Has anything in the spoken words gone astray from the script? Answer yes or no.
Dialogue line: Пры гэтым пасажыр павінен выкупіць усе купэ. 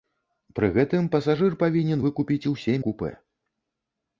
no